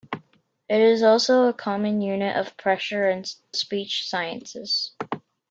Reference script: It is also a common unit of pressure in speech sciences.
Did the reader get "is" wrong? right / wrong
right